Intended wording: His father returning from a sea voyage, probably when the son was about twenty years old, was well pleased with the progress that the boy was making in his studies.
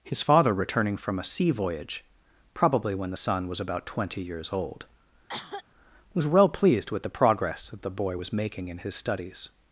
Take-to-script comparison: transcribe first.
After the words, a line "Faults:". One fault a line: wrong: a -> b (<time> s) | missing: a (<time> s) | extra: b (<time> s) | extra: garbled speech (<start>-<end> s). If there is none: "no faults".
His father returning from a sea voyage, probably when the son was about twenty years old, was well pleased with the progress that the boy was making in his studies.
Faults:
no faults